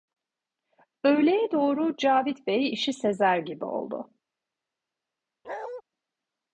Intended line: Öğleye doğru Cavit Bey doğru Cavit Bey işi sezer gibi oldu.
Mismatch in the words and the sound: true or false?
true